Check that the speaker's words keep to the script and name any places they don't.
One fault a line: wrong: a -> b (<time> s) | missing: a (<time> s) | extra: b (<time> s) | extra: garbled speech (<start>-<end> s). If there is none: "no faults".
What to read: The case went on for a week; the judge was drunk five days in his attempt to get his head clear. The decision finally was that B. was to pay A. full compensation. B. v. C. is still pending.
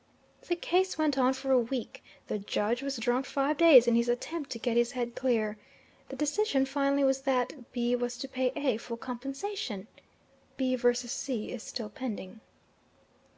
no faults